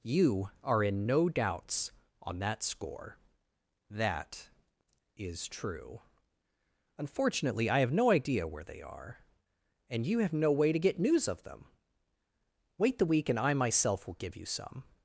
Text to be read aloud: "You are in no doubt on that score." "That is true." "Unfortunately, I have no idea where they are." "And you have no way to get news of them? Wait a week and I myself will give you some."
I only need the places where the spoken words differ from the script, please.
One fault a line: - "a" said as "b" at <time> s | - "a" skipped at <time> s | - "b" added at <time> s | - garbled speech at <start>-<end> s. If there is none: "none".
- "doubt" said as "doubts" at 1.3 s
- "a" said as "the" at 13.0 s